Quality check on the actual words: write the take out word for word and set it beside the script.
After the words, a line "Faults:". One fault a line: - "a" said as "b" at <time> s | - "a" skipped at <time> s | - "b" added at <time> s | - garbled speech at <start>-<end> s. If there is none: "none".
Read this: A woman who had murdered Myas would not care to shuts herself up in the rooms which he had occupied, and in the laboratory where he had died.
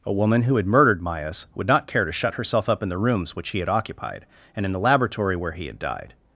A woman who had murdered Myas would not care to shut herself up in the rooms which he had occupied, and in the laboratory where he had died.
Faults:
- "shuts" said as "shut" at 2.1 s